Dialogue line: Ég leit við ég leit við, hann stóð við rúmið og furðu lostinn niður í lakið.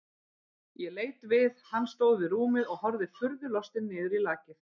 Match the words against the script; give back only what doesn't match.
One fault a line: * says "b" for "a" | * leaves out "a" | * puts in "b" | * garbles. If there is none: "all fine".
* leaves out "ég leit við"
* puts in "horfði"